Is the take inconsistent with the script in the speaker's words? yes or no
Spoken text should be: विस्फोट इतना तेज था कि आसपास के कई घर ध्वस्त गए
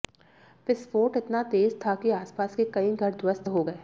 yes